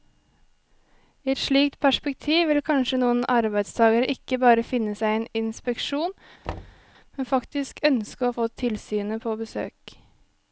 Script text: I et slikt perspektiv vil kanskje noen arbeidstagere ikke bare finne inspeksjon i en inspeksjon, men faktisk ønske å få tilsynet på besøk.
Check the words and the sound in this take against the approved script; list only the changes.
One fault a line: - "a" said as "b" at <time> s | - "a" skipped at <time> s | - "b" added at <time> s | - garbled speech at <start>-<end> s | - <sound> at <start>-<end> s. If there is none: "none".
- "inspeksjon" said as "seg" at 5.0 s
- thud at 6.4-6.8 s